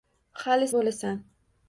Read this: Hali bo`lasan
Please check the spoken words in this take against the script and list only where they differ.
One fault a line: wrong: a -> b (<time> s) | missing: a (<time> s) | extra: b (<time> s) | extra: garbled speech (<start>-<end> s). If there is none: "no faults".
no faults